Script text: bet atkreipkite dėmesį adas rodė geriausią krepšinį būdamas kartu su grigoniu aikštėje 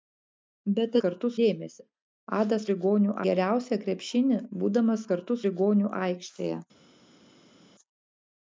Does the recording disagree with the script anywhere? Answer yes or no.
yes